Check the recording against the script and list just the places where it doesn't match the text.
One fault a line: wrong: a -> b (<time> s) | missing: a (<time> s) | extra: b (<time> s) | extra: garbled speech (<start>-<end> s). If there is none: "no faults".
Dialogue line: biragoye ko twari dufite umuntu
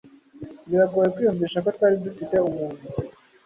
extra: kwiyumvisha (1.1 s)